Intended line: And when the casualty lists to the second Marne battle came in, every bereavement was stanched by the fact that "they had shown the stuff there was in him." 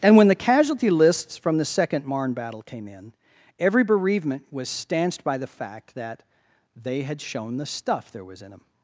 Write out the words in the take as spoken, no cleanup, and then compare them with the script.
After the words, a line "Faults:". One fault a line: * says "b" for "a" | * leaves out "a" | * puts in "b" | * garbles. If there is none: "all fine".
And when the casualty lists from the second Marne battle came in, every bereavement was stanched by the fact that "they had shown the stuff there was in them."
Faults:
* says "from" for "to"
* says "them" for "him"